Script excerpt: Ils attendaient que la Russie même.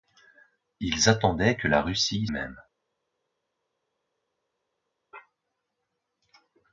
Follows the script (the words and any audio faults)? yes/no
yes